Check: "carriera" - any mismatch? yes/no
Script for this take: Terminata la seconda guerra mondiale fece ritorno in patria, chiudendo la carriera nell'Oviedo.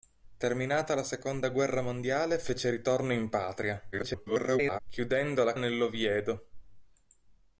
yes